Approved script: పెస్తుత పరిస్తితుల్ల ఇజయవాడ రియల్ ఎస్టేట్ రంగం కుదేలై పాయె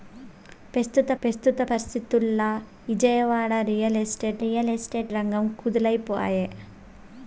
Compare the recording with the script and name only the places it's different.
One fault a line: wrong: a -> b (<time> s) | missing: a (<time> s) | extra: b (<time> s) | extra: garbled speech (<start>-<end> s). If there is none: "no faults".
extra: పెస్తుత (1.2 s)
extra: రియల్ ఎస్టేట్ (4.4 s)